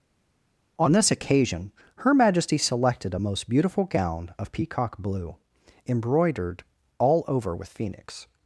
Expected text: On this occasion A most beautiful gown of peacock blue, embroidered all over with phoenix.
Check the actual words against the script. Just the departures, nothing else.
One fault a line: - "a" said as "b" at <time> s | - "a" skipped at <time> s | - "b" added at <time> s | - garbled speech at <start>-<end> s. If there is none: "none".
- "Her Majesty selected" added at 2.0 s